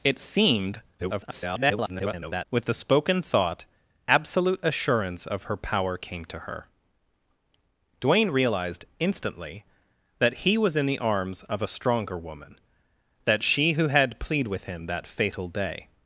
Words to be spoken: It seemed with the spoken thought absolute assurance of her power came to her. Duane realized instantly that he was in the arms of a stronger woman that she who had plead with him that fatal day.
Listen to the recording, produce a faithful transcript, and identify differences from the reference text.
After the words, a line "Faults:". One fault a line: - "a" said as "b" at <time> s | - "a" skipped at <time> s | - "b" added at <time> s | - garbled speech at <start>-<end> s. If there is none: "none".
It seemed [garbled] with the spoken thought absolute assurance of her power came to her. Duane realized instantly that he was in the arms of a stronger woman that she who had plead with him that fatal day.
Faults:
- garbled speech at 1.0-2.5 s